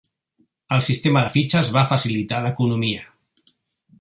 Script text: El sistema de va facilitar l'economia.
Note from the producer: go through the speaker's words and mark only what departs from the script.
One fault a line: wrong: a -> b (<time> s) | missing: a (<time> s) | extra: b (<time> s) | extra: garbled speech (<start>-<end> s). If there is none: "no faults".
extra: fitxes (1.4 s)